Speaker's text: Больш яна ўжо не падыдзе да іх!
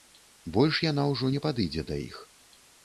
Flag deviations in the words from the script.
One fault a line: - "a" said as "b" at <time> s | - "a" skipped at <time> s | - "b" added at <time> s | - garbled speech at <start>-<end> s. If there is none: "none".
none